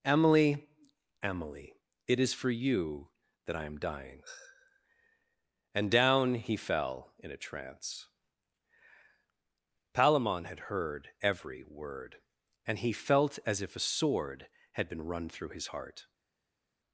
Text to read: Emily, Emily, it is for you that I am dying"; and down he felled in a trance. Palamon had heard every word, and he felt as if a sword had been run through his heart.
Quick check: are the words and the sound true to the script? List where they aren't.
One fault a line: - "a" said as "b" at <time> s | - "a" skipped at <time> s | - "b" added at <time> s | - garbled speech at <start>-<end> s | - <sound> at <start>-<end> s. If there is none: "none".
- "felled" said as "fell" at 6.5 s